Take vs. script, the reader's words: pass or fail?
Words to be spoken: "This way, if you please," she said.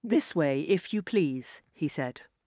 fail